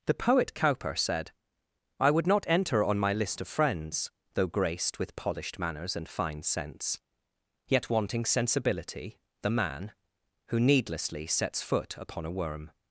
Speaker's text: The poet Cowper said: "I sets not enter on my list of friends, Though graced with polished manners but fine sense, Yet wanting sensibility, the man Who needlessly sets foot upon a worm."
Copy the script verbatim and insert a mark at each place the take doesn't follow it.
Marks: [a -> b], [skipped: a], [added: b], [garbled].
The poet Cowper said: "I [sets -> would] not enter on my list of friends, Though graced with polished manners [but -> and] fine sense, Yet wanting sensibility, the man Who needlessly sets foot upon a worm."